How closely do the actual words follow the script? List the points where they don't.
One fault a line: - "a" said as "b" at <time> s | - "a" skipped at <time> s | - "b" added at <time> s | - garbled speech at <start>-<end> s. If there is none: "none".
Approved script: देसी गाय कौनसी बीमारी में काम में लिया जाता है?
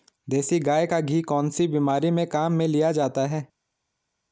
- "का घी" added at 0.8 s